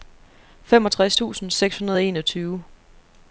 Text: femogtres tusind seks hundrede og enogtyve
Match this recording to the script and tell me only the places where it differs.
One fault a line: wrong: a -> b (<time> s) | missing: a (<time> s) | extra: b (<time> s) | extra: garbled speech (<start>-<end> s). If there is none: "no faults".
no faults